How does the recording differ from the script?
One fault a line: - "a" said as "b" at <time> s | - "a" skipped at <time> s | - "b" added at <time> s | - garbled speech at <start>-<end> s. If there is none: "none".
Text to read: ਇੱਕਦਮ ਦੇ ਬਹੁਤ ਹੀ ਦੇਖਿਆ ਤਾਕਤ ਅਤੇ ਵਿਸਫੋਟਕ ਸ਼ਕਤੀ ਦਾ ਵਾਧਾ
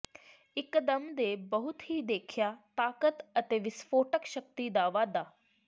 none